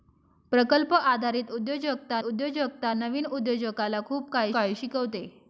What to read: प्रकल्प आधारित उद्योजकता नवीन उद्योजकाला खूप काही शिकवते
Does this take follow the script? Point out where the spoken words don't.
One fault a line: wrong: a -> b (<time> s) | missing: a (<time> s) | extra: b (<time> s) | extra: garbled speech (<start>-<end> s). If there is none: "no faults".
extra: उद्योजकता (2.2 s)
extra: काही (4.5 s)